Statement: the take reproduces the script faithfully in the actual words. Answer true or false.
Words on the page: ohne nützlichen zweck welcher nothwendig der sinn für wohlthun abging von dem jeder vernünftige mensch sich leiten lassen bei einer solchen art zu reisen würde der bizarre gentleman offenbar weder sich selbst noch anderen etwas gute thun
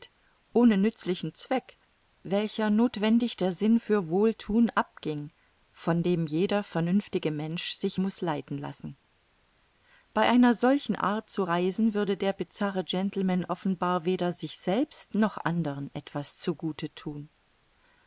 false